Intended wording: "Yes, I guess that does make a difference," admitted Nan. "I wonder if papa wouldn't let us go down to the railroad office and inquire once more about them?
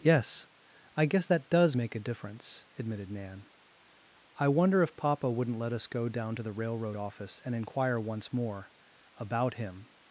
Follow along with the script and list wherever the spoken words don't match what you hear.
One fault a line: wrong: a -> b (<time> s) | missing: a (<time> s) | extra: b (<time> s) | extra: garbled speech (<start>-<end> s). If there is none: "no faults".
wrong: them -> him (9.5 s)